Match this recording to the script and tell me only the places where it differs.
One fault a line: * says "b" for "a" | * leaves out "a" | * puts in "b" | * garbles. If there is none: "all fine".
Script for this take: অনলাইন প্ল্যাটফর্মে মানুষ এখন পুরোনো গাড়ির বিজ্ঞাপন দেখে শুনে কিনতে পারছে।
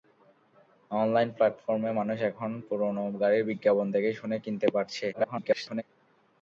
* garbles